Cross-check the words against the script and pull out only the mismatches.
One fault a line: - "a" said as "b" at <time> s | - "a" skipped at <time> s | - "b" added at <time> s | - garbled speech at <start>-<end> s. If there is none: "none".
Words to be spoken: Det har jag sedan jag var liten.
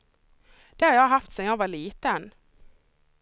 - "haft" added at 1.1 s